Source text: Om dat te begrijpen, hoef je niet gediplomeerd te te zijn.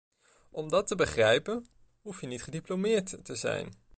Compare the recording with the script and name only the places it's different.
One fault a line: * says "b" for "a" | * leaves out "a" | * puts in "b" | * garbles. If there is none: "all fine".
* leaves out "te"